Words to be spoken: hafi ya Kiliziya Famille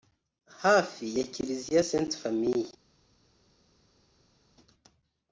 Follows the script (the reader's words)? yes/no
no